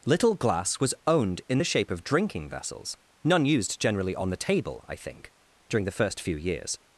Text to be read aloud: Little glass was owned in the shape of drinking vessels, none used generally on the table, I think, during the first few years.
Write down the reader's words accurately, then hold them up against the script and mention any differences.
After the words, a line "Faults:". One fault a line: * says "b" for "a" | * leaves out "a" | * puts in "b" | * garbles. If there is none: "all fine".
Little glass was owned in the shape of drinking vessels, none used generally on the table, I think, during the first few years.
Faults:
all fine